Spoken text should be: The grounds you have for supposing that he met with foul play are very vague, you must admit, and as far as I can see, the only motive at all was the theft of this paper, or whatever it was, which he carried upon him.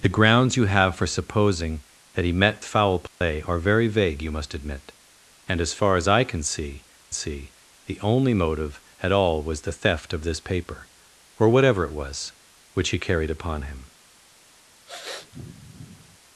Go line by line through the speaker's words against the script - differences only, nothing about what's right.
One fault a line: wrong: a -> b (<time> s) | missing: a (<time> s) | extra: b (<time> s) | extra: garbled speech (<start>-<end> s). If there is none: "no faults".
missing: with (2.6 s)
extra: see (7.1 s)